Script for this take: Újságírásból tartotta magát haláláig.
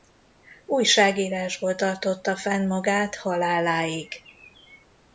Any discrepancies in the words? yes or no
yes